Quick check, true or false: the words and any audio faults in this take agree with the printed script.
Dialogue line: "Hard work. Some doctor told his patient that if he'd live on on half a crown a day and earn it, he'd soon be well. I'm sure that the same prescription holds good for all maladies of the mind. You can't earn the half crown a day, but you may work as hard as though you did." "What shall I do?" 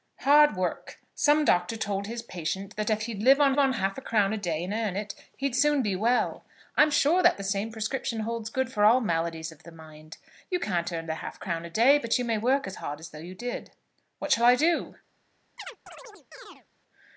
false